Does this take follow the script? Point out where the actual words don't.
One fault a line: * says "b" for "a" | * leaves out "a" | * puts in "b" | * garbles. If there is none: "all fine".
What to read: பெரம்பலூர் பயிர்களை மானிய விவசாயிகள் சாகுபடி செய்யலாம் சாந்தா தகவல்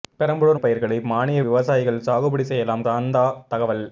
all fine